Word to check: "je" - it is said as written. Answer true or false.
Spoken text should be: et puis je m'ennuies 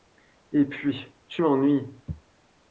false